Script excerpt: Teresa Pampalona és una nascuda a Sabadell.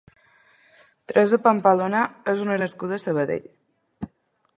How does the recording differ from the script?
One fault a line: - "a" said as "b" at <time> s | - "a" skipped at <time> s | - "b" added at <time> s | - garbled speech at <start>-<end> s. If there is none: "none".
none